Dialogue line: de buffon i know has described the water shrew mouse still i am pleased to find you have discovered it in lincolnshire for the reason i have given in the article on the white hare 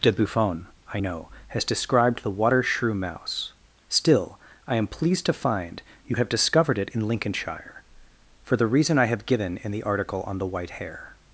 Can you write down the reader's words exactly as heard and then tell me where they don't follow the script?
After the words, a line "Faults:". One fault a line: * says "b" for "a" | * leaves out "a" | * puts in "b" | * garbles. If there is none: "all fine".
de buffon i know has described the water shrew mouse still i am pleased to find you have discovered it in lincolnshire for the reason i have given in the article on the white hare
Faults:
all fine